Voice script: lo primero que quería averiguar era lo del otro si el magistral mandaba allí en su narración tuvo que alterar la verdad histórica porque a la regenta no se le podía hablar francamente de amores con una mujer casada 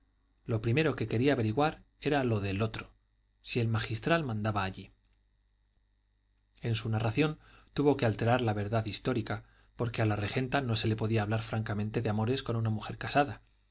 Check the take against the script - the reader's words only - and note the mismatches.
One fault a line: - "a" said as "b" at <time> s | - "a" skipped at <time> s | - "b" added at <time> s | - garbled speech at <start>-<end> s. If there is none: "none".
none